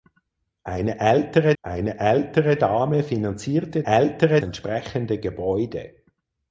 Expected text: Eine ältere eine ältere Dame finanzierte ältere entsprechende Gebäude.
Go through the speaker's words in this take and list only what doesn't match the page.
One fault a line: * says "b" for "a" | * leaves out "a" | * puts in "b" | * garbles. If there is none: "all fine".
all fine